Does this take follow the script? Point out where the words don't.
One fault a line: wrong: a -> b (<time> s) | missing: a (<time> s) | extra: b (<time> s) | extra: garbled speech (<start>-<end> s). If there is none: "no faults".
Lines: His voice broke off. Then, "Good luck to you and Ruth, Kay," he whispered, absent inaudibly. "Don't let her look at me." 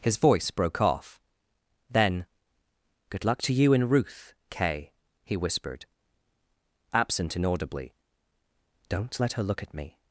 no faults